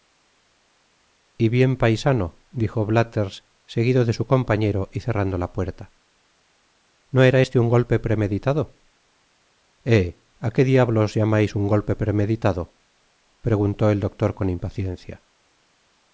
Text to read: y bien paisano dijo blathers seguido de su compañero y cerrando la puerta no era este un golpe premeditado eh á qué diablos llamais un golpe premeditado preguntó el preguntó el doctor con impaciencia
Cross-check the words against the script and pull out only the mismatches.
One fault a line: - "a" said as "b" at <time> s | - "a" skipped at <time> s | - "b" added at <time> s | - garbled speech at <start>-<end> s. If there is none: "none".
- "preguntó el" skipped at 14.0 s